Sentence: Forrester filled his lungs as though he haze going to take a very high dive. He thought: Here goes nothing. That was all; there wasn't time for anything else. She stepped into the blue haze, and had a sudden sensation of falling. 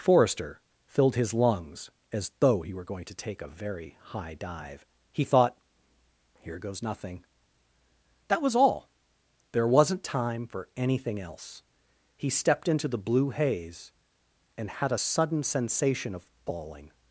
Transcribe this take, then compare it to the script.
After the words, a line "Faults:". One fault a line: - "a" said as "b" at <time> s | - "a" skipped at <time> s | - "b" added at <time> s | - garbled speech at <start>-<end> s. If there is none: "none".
Forrester filled his lungs as though he were going to take a very high dive. He thought: Here goes nothing. That was all; there wasn't time for anything else. He stepped into the blue haze, and had a sudden sensation of falling.
Faults:
- "haze" said as "were" at 2.7 s
- "She" said as "He" at 12.1 s